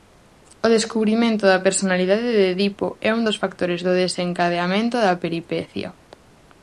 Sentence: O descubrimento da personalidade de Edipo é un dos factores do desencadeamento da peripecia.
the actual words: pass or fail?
pass